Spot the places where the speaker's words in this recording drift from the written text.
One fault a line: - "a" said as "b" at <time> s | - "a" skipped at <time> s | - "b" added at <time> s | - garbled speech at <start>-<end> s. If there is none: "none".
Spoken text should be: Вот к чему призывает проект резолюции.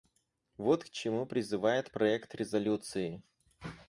none